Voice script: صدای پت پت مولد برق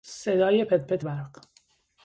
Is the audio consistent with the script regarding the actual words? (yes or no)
no